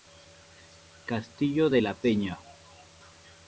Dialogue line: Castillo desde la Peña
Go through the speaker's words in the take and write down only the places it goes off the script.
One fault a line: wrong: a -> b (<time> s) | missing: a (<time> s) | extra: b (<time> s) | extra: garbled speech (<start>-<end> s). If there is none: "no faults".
wrong: desde -> de (1.7 s)